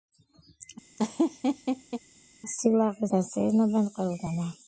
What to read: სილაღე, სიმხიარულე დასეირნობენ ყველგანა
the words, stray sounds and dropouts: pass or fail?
fail